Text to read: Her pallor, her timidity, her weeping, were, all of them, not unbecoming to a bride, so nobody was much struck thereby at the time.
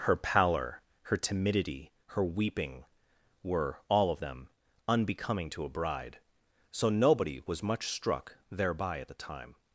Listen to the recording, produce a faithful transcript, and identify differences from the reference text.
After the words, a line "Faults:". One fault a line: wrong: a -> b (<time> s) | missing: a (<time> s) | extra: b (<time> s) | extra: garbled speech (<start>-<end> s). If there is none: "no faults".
Her pallor, her timidity, her weeping, were, all of them, unbecoming to a bride, so nobody was much struck thereby at the time.
Faults:
missing: not (4.5 s)